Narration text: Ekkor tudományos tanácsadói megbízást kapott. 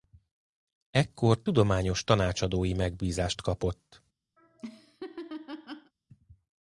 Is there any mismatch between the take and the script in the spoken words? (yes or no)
no